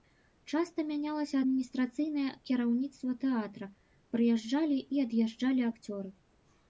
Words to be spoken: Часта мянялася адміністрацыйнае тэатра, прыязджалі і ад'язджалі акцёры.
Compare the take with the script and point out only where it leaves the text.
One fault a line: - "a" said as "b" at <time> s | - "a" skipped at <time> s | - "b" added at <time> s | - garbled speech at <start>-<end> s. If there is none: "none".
- "кіраўніцтва" added at 2.5 s